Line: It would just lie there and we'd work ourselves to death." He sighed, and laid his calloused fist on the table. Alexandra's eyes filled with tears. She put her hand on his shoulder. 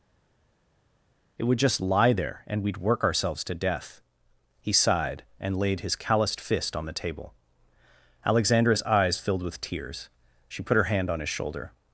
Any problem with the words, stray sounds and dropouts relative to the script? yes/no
no